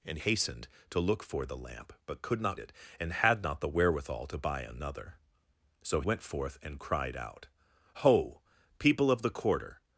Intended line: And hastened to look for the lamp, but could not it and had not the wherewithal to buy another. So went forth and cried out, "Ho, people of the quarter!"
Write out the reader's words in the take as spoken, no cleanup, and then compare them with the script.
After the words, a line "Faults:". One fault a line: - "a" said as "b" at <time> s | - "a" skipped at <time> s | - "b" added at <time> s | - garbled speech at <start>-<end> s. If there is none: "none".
And hastened to look for the lamp, but could not it and had not the wherewithal to buy another. So went forth and cried out, "Ho, people of the quarter!"
Faults:
none